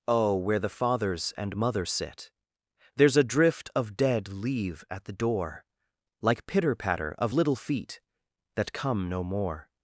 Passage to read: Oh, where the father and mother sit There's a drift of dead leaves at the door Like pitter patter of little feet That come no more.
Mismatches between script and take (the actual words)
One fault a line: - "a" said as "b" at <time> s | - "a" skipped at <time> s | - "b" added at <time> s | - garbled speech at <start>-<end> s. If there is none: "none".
- "father" said as "fathers" at 0.7 s
- "leaves" said as "leave" at 4.3 s